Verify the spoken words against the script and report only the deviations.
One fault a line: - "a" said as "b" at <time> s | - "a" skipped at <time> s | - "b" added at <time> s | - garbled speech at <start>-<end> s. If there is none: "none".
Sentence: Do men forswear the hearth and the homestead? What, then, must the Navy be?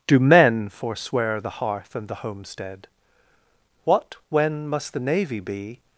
- "then" said as "when" at 4.3 s